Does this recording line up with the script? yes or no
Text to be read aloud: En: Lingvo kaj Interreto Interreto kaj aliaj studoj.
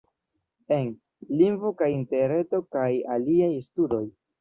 no